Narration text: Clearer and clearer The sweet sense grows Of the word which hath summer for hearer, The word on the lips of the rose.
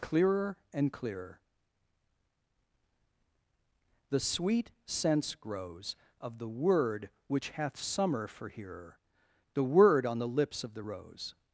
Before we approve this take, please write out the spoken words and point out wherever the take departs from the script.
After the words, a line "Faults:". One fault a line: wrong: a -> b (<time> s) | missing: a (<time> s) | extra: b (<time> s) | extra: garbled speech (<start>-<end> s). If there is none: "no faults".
Clearer and clearer The sweet sense grows Of the word which hath summer for hearer, The word on the lips of the rose.
Faults:
no faults